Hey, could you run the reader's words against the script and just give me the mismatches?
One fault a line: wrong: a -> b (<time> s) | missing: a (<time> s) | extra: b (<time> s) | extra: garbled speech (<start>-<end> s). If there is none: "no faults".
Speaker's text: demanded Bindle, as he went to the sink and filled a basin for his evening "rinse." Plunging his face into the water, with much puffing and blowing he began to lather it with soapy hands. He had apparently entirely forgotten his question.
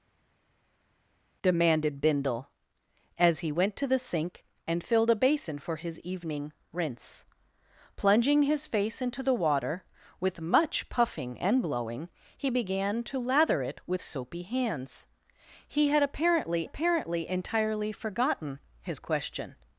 extra: apparently (16.6 s)